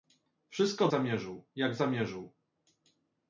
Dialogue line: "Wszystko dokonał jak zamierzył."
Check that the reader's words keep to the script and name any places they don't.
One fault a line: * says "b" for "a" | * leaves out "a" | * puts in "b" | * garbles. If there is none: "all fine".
* says "zamierzył" for "dokonał"